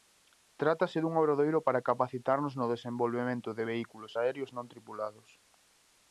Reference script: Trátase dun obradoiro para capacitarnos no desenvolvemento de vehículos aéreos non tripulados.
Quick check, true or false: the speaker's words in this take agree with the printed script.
true